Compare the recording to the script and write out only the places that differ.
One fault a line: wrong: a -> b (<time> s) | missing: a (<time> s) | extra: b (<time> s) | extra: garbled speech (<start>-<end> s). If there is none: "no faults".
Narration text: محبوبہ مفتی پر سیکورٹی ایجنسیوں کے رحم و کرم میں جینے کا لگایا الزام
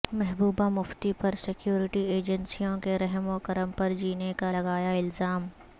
wrong: میں -> پر (3.8 s)